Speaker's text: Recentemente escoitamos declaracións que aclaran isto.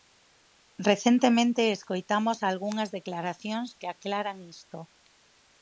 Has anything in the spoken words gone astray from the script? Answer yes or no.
yes